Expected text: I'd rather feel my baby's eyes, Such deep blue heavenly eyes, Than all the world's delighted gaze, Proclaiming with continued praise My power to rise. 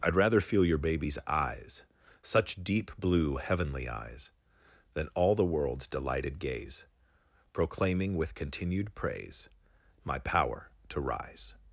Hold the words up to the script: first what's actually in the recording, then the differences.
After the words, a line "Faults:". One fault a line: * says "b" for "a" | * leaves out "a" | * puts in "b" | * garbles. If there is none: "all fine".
I'd rather feel your baby's eyes, Such deep blue heavenly eyes, Than all the world's delighted gaze, Proclaiming with continued praise My power to rise.
Faults:
* says "your" for "my"